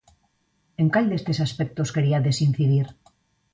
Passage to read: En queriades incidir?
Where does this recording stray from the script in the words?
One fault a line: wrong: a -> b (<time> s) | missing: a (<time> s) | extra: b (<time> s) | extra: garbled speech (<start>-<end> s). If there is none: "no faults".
extra: cal destes aspectos (0.9 s)